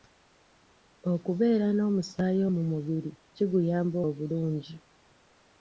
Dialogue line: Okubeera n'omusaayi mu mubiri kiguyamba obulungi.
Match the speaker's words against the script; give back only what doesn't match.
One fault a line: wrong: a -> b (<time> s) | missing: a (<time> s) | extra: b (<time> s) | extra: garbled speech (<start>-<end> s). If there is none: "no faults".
no faults